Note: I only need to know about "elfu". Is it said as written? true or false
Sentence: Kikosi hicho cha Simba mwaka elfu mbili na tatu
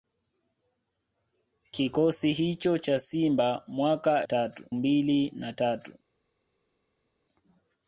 false